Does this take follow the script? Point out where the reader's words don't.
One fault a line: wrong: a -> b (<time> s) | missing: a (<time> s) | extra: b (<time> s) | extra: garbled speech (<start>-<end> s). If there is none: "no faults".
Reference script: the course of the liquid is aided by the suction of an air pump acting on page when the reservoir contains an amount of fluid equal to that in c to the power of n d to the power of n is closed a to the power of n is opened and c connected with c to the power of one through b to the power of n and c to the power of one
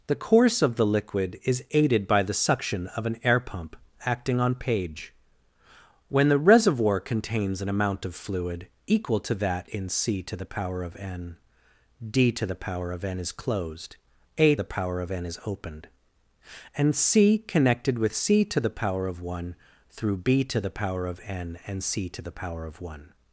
missing: to (14.6 s)